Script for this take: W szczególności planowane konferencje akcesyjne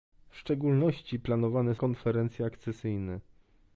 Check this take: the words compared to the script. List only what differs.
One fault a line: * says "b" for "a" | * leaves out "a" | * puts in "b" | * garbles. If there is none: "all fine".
all fine